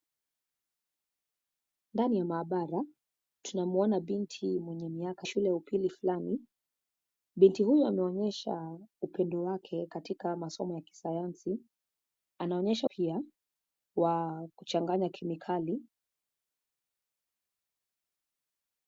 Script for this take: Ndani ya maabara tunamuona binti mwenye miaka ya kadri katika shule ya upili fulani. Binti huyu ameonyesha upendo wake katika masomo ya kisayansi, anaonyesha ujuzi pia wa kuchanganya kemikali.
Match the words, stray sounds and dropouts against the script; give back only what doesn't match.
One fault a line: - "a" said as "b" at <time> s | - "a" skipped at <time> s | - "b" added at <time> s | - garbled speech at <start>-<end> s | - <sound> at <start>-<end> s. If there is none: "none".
- "ya kadri katika" skipped at 5.3 s
- "ujuzi" skipped at 12.9 s